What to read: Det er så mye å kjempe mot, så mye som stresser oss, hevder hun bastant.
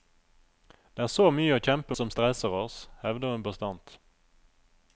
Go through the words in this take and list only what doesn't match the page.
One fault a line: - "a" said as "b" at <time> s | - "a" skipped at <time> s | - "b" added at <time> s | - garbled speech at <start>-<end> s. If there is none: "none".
- "mot så mye" skipped at 1.9 s